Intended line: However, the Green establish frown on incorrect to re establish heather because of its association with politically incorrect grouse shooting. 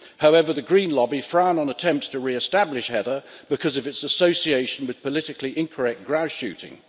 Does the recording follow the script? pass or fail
fail